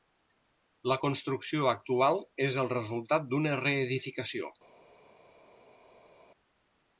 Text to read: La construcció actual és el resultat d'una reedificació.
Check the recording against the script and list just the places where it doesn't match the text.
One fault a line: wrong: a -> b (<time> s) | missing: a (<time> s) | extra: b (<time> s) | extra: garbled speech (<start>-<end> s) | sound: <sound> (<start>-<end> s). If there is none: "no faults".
no faults